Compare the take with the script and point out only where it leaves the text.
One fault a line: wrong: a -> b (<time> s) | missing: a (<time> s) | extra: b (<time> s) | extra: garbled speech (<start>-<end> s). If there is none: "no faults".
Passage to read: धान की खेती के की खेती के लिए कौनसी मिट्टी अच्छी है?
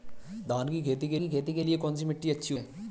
no faults